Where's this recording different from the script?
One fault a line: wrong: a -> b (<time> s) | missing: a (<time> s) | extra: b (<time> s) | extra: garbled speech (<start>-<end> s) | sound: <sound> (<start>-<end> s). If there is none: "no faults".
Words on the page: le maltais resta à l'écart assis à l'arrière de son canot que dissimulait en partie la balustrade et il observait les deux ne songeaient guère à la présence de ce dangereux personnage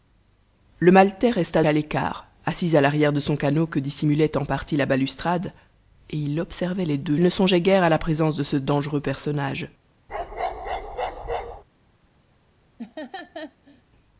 sound: bark (10.1-11.6 s)
sound: laugh (12.8-13.8 s)